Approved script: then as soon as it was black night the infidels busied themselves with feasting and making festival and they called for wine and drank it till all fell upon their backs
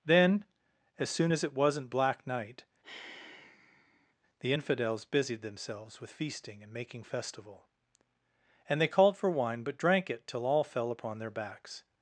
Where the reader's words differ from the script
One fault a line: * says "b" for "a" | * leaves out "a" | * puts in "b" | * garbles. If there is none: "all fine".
* says "wasn't" for "was"
* says "but" for "and"